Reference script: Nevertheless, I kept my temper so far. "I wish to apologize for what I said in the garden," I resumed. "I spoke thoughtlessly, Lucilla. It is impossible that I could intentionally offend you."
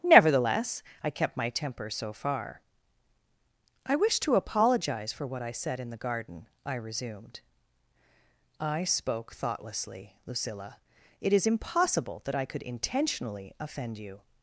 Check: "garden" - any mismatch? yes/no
no